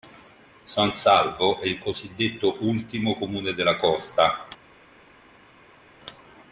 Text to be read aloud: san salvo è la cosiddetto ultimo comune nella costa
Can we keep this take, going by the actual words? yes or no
no